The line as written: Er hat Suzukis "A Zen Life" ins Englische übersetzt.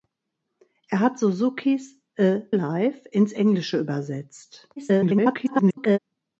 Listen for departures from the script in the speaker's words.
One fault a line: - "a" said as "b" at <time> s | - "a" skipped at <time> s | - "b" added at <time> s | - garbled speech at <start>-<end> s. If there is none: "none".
- "Zen" skipped at 2.4 s
- garbled speech at 4.8-6.0 s